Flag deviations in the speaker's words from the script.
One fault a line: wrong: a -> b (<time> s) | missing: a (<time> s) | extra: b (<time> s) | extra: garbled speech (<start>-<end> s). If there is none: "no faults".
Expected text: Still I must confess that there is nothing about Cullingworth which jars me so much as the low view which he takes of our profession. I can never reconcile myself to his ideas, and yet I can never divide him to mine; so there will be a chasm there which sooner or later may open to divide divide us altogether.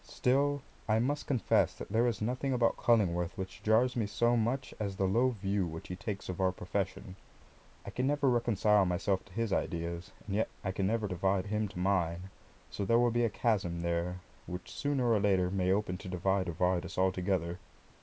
no faults